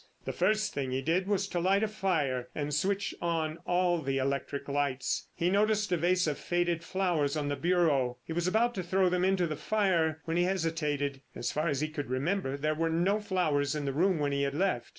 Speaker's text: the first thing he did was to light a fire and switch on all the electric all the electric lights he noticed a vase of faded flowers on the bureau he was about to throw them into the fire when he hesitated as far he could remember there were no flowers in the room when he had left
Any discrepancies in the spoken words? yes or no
yes